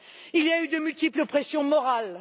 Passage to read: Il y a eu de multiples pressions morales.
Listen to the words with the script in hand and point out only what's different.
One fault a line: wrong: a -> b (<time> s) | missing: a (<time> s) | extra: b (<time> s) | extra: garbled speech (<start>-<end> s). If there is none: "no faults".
no faults